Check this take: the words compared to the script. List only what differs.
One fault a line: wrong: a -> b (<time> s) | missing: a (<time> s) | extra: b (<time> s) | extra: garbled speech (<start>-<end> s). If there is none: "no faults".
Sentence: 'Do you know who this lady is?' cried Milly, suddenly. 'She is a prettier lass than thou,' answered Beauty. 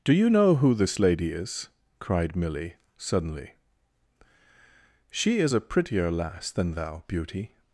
missing: answered (7.0 s)